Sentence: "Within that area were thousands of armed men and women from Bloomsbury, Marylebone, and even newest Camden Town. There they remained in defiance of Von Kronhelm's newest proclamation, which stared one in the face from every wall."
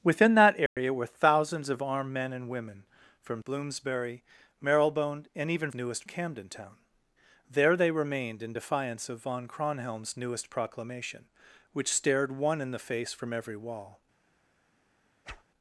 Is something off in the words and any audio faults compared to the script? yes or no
yes